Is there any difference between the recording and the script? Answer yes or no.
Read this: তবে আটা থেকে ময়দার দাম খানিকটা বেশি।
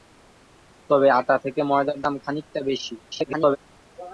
yes